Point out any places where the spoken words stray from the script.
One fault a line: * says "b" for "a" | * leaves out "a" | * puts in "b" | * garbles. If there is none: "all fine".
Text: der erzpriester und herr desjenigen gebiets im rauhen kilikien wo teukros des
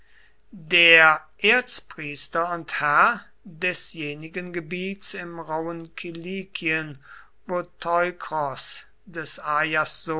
all fine